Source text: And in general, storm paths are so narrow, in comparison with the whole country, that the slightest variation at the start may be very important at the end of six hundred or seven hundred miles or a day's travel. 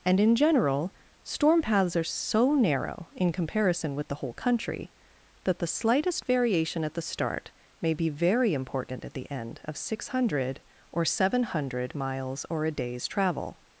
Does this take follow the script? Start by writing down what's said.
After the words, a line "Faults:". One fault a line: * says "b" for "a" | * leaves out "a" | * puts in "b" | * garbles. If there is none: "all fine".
And in general, storm paths are so narrow, in comparison with the whole country, that the slightest variation at the start may be very important at the end of six hundred or seven hundred miles or a day's travel.
Faults:
all fine